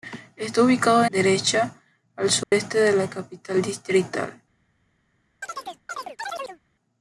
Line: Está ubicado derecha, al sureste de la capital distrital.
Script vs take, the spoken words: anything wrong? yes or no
no